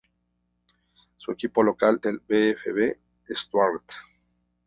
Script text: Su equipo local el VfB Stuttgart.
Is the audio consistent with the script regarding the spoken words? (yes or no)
yes